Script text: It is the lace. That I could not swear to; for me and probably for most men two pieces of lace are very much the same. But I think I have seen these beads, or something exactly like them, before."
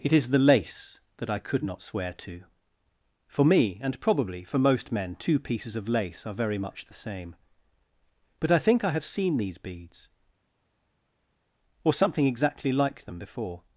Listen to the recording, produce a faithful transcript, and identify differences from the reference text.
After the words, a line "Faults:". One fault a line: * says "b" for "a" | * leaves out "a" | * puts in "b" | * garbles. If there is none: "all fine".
It is the lace. That I could not swear to; for me and probably for most men two pieces of lace are very much the same. But I think I have seen these beads, or something exactly like them, before."
Faults:
all fine